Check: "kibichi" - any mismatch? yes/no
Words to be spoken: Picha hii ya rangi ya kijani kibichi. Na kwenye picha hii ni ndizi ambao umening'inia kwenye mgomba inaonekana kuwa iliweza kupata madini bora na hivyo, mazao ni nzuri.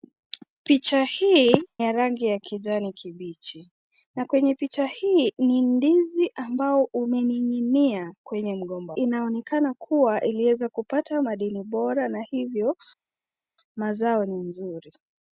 no